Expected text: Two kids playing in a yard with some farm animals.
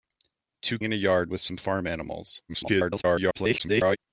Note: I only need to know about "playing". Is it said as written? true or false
false